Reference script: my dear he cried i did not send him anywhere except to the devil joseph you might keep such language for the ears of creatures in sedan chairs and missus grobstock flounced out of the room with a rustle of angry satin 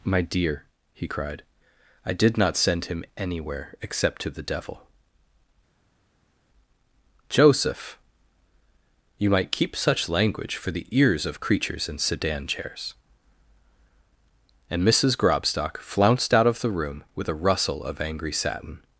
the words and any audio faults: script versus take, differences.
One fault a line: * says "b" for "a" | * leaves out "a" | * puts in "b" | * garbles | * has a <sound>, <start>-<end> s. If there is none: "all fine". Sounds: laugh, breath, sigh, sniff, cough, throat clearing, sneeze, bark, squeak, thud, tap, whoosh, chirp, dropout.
all fine